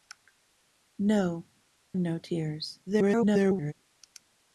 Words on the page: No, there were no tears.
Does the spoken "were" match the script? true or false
false